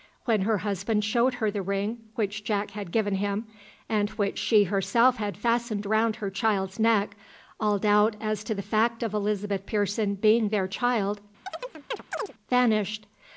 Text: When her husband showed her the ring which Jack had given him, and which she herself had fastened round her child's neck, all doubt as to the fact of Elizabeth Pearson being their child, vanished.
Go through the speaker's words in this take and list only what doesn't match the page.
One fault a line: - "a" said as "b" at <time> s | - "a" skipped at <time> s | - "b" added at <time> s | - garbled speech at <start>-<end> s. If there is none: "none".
none